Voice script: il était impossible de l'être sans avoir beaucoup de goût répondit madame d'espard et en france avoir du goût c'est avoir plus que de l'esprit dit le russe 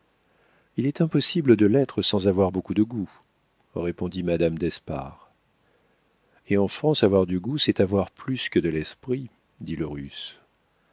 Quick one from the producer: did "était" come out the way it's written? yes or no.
no